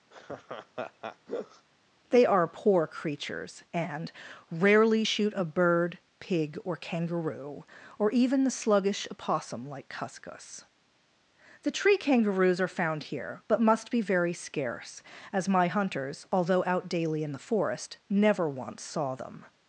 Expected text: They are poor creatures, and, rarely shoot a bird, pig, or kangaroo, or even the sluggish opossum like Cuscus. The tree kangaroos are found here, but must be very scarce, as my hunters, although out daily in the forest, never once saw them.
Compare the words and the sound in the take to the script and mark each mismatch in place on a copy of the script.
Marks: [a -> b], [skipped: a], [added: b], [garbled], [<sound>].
[laugh] They are poor creatures, and, rarely shoot a bird, pig, or kangaroo, or even the sluggish opossum like Cuscus. The tree kangaroos are found here, but must be very scarce, as my hunters, although out daily in the forest, never once saw them.